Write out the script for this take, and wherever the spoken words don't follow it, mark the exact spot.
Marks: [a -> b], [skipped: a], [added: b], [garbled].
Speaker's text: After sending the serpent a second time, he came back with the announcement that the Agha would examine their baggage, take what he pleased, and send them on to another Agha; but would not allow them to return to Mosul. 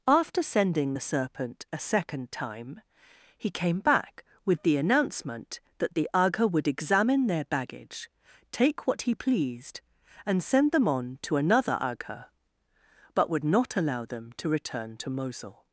After sending the serpent a second time, he came back with the announcement that the Agha would examine their baggage, take what he pleased, and send them on to another Agha; but would not allow them to return to Mosul.